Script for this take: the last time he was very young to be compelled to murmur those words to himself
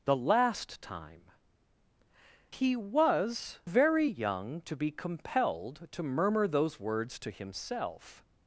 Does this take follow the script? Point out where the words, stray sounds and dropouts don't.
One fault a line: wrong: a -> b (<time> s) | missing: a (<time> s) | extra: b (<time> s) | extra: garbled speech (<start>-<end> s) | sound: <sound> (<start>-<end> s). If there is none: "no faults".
no faults